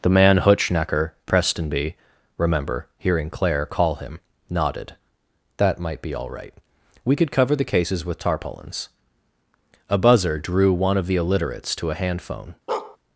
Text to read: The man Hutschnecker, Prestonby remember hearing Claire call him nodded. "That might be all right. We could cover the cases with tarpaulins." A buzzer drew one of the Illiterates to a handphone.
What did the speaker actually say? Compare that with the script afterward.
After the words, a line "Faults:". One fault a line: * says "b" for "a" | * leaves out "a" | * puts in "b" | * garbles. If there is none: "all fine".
The man Hutschnecker, Prestonby remember hearing Claire call him nodded. "That might be all right. We could cover the cases with tarpaulins." A buzzer drew one of the Illiterates to a handphone.
Faults:
all fine